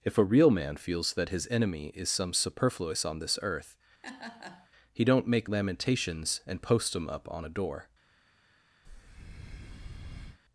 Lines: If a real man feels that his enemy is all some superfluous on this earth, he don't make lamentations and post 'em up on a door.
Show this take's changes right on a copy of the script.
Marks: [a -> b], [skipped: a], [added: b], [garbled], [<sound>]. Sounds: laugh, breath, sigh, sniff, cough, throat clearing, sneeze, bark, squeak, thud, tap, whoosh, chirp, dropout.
If a real man feels that his enemy is [skipped: all] some superfluous on this earth, [laugh] he don't make lamentations and post 'em up on a door. [breath]